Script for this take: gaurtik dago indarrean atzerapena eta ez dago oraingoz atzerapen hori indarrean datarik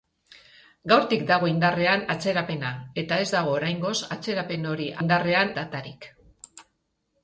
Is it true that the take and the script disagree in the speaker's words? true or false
false